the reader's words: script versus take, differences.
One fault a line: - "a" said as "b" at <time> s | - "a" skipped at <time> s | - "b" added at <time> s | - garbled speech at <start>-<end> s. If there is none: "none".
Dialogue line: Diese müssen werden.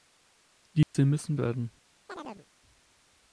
none